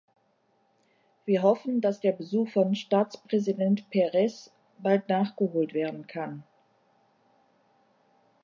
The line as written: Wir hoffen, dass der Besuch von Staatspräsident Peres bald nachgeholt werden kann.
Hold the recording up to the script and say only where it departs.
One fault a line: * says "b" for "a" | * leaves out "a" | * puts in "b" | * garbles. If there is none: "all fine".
all fine